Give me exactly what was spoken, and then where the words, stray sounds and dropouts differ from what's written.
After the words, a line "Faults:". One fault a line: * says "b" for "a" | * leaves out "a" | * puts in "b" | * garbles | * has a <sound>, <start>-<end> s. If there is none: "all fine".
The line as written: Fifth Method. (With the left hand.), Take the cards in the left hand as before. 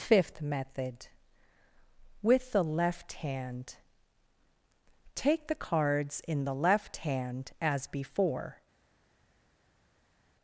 Fifth Method. (With the left hand.), Take the cards in the left hand as before.
Faults:
all fine